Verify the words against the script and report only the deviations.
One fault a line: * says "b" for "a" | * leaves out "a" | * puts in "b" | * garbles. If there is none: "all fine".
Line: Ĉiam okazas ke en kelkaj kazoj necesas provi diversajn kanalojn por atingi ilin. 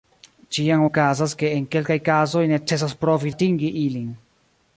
* leaves out "diversajn kanalojn por"